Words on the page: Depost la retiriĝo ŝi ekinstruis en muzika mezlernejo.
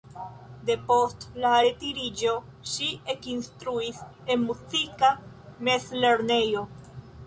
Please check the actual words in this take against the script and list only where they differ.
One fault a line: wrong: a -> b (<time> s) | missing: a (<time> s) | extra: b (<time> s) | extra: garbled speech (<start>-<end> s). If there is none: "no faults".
no faults